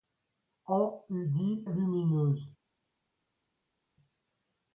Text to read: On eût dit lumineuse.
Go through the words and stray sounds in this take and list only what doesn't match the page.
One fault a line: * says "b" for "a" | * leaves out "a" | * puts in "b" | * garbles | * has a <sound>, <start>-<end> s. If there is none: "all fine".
all fine